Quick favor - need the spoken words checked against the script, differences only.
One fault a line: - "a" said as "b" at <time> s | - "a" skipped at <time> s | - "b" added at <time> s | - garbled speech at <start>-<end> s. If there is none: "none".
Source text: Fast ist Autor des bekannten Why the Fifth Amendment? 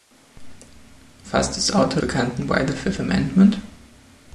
- "des" skipped at 2.0 s